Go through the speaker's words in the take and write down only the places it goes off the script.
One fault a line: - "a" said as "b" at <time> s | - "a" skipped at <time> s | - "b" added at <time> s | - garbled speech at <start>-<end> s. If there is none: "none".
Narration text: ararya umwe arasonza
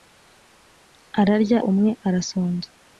none